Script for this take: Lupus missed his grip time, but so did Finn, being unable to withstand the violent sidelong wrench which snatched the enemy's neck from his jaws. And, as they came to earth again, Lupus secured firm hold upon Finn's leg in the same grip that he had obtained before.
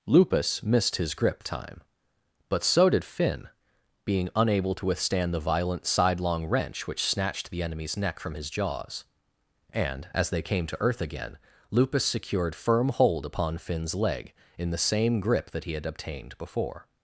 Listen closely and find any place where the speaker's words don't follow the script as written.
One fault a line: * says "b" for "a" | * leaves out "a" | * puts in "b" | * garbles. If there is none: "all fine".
all fine